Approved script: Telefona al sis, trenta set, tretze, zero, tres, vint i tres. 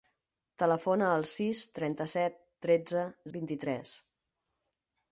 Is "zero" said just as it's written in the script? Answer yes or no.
no